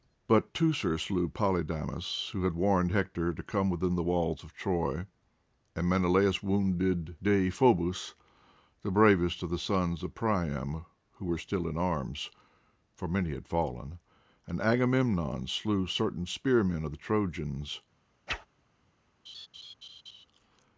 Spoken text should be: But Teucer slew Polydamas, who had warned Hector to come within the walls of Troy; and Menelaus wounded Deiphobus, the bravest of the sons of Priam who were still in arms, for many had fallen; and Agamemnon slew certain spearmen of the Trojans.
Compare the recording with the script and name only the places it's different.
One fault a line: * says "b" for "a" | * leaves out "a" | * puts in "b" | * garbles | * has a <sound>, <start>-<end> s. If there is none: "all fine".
* has a whoosh, 18.3-18.5 s
* has a laugh, 19.3-20.3 s